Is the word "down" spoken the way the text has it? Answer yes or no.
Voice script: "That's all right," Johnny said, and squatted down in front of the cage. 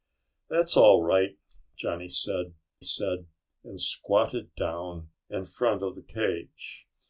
yes